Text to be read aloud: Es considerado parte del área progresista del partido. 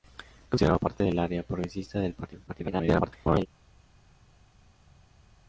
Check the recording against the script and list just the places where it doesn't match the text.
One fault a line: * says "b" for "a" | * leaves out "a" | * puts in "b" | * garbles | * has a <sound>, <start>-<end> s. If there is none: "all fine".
* garbles